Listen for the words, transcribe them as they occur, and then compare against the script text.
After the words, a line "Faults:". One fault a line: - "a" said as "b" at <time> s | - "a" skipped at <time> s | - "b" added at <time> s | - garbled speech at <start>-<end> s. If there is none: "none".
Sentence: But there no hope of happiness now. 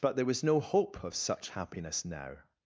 But there was no hope of such happiness now.
Faults:
- "was" added at 0.2 s
- "such" added at 1.1 s